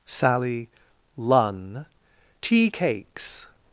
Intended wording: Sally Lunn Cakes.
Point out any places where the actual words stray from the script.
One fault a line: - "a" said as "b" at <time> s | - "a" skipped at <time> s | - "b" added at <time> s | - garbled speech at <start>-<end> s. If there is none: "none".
- "Tea" added at 2.4 s